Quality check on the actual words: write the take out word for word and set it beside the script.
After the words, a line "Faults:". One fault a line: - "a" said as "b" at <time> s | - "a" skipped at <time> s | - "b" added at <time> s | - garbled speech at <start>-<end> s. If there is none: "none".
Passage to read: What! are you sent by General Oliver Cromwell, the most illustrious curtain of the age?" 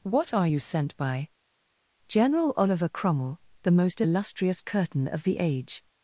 What! are you sent by General Oliver Cromwell, the most illustrious curtain of the age?"
Faults:
none